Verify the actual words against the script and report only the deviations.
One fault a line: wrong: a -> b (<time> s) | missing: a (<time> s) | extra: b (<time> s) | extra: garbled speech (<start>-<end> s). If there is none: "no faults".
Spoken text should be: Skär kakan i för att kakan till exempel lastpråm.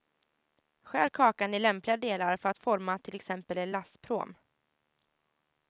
extra: lämpliga delar (1.6 s)
wrong: kakan -> forma (2.6 s)
extra: en (3.6 s)